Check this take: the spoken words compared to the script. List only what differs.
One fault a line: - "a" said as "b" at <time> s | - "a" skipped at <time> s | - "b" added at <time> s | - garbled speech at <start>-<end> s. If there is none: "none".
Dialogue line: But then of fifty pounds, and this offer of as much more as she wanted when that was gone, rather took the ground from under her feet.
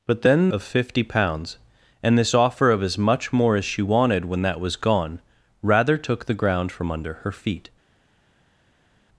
none